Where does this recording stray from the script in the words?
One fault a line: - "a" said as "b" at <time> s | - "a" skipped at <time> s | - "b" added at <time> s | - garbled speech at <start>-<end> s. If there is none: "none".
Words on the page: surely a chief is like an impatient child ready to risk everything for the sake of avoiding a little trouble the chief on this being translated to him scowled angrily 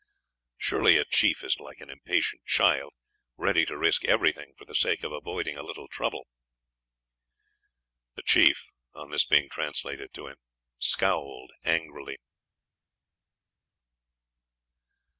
none